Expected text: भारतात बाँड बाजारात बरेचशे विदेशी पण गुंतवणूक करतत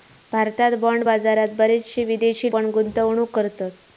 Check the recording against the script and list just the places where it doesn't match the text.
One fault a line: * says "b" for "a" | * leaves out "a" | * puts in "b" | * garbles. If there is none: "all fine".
all fine